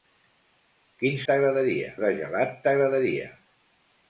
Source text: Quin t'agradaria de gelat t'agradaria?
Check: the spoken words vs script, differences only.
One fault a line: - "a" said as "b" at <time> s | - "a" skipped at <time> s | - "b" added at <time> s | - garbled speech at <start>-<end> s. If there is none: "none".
none